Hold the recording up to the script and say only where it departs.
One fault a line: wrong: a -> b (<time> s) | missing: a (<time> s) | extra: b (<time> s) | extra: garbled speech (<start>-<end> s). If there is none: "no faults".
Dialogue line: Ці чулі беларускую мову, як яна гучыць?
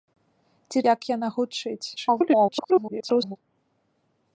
missing: чулі беларускую мову (0.8 s)
extra: garbled speech (2.0-3.4 s)